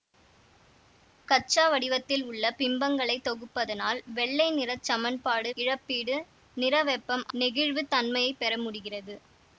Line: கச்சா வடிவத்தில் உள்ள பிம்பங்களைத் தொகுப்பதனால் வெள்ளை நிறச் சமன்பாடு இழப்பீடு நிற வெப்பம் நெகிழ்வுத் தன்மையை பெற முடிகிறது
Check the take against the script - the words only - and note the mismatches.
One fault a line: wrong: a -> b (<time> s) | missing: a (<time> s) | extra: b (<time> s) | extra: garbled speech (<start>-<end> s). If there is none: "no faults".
no faults